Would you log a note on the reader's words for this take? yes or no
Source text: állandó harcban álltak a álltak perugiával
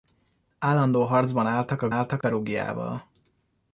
no